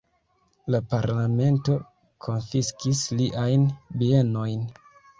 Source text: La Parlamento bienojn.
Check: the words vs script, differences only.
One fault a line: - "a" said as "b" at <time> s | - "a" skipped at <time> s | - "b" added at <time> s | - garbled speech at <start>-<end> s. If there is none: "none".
- "konfiskis liajn" added at 2.3 s